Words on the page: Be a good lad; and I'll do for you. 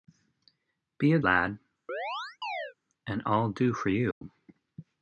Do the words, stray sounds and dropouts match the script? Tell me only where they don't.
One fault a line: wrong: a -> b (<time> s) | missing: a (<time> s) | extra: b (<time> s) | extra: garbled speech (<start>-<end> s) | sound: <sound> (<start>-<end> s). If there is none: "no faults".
missing: good (1.2 s)
sound: chirp (1.9-2.7 s)
sound: dropout (4.1-4.2 s)